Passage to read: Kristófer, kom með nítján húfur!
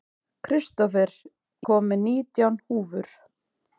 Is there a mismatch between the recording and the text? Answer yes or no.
no